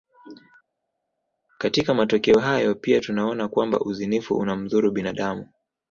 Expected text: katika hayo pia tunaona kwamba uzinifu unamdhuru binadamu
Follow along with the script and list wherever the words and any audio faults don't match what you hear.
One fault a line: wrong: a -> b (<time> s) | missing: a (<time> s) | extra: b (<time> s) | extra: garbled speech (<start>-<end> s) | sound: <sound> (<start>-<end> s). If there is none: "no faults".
extra: matokeo (1.9 s)